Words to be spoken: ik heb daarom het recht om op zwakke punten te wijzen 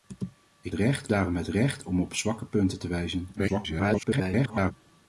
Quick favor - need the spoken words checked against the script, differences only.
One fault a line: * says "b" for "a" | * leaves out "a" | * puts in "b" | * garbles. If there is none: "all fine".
* says "recht" for "heb"
* garbles